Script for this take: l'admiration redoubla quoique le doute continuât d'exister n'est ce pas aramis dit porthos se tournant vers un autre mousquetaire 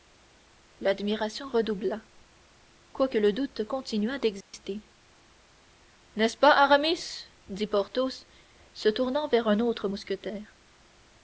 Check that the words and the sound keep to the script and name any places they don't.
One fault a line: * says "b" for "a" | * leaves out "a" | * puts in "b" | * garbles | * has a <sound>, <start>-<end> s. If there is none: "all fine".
* has a dropout, 4.4-4.5 s